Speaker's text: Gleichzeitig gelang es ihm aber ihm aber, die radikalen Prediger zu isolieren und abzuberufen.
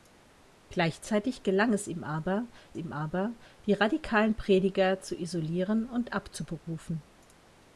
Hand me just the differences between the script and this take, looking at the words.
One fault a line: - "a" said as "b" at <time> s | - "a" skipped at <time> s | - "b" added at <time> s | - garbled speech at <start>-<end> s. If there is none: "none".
none